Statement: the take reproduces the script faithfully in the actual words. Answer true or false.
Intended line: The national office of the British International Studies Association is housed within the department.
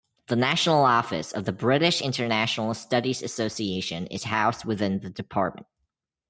true